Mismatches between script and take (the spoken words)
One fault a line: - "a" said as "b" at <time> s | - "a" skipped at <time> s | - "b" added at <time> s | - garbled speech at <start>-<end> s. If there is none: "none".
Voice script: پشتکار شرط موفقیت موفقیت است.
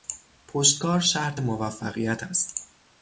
- "موفقیت" skipped at 2.2 s